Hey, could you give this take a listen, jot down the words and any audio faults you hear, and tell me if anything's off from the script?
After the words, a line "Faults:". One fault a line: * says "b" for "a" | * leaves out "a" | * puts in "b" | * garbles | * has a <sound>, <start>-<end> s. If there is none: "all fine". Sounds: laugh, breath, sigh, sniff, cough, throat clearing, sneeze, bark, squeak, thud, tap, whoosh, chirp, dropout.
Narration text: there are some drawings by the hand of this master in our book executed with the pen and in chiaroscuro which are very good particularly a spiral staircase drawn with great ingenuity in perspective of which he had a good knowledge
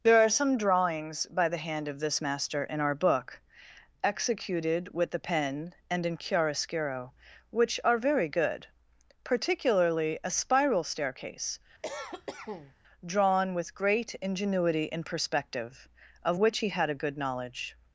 there are some drawings by the hand of this master in our book executed with the pen and in chiaroscuro which are very good particularly a spiral staircase drawn with great ingenuity in perspective of which he had a good knowledge
Faults:
* has a cough, 11.8-12.7 s